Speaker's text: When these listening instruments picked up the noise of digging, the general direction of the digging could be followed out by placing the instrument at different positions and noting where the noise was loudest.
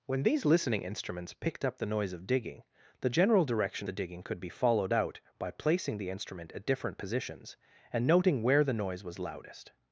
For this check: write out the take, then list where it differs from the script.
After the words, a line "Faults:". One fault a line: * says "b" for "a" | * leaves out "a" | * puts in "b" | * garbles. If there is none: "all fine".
When these listening instruments picked up the noise of digging, the general direction the digging could be followed out by placing the instrument at different positions and noting where the noise was loudest.
Faults:
* leaves out "of"